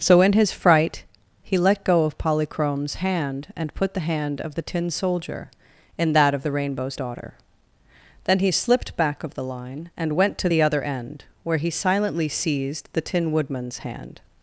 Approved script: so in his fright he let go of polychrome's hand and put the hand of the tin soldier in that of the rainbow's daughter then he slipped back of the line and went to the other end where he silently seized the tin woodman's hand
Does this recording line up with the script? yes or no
yes